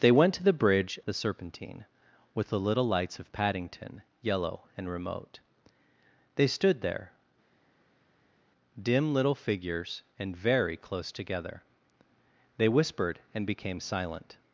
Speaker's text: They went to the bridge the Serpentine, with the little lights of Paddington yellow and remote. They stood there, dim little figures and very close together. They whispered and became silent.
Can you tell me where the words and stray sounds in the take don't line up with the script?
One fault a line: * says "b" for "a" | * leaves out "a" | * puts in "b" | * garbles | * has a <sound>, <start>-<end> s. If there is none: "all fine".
all fine